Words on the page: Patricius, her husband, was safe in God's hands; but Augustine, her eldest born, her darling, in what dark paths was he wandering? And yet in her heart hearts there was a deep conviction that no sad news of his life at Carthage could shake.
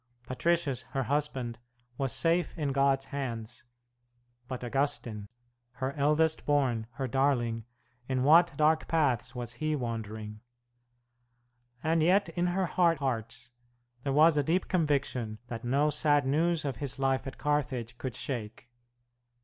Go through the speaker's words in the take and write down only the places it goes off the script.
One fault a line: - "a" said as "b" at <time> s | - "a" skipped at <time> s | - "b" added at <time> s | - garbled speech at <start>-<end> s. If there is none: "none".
none